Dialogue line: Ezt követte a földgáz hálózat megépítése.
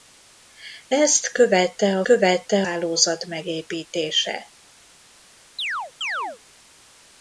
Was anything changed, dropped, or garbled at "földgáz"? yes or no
yes